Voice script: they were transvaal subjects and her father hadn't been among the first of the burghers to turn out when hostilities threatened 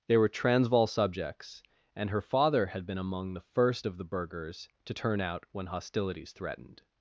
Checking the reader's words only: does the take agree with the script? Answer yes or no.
no